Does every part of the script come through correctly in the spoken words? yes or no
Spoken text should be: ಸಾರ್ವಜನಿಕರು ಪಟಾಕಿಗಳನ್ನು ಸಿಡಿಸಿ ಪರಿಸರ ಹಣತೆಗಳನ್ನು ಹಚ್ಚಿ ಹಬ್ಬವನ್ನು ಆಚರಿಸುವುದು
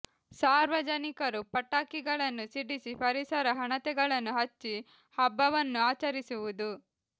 yes